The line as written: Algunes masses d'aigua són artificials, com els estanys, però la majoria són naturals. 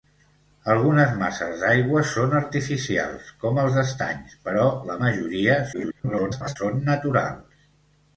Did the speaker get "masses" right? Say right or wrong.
right